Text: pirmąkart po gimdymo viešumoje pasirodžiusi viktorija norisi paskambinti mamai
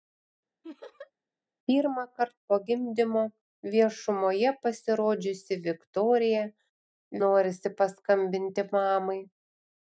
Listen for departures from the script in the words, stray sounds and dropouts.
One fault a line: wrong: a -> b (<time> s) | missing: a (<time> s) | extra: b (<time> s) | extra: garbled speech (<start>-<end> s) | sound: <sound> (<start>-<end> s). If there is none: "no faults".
sound: laugh (0.6-1.1 s)